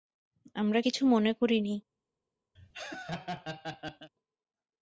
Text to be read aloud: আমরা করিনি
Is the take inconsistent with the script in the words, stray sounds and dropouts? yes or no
yes